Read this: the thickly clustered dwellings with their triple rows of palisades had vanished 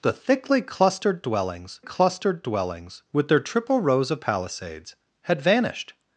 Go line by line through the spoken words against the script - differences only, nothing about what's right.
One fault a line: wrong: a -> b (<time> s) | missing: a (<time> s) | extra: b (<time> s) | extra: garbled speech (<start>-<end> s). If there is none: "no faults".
extra: clustered dwellings (1.8 s)